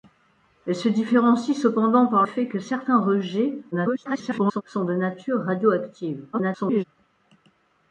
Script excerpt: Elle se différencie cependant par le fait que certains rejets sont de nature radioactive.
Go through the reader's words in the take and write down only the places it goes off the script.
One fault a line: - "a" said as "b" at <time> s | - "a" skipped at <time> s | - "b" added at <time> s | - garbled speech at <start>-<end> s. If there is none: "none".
- "le" skipped at 2.2 s
- garbled speech at 3.7-4.6 s
- garbled speech at 6.3-6.8 s